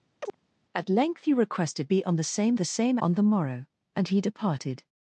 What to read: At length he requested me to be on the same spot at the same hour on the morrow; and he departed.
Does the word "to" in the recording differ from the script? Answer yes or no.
yes